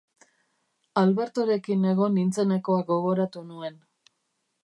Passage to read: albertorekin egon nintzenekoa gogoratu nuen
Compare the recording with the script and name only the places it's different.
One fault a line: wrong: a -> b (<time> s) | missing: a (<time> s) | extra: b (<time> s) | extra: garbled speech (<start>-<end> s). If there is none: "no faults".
no faults